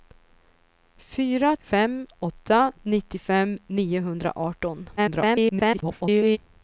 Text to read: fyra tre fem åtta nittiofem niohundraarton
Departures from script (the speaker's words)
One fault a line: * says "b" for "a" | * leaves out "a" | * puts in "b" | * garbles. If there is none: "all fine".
* leaves out "tre"
* garbles